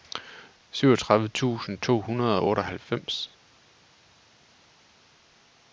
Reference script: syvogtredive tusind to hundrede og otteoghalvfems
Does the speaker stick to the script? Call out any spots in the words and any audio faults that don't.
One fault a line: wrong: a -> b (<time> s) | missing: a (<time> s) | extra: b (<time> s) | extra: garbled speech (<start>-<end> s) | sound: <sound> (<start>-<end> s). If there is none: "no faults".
no faults